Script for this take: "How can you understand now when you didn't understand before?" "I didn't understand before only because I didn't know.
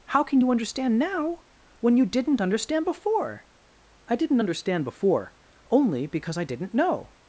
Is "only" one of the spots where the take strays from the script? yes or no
no